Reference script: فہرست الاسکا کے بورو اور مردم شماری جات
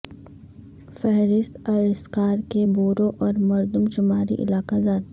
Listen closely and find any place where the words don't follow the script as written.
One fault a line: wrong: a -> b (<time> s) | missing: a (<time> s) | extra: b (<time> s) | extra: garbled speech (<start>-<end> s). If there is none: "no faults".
extra: علاقہ (4.4 s)